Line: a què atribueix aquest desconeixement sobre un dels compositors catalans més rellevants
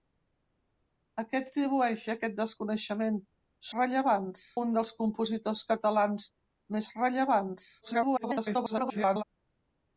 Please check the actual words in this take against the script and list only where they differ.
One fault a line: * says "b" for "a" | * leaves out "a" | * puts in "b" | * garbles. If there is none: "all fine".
* says "rellevants" for "sobre"
* garbles